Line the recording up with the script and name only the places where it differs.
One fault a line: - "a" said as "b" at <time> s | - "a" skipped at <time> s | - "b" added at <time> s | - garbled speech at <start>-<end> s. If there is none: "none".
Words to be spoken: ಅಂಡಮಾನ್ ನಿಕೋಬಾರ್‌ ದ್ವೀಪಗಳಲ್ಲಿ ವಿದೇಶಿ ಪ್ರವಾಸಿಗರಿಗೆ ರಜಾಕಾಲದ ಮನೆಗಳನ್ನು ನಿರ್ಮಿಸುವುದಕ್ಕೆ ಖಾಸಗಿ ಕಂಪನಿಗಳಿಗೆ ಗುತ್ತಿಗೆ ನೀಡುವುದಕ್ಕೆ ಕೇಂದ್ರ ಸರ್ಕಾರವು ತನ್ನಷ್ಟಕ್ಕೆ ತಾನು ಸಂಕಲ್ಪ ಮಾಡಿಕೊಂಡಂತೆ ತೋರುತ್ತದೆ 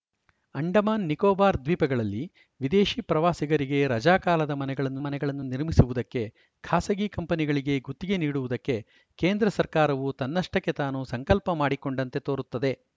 - "ಮನೆಗಳನ್ನು" added at 5.0 s